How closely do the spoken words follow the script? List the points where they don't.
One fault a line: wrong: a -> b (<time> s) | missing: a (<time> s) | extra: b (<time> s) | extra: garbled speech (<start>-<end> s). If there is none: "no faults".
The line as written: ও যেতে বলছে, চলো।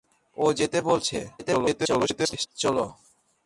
extra: garbled speech (1.4-2.5 s)